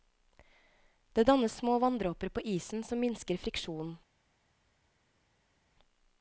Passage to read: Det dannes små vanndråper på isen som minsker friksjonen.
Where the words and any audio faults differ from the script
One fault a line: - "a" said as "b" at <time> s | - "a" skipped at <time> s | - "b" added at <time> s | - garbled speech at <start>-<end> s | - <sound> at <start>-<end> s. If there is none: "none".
none